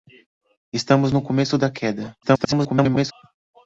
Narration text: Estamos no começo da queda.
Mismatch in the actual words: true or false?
true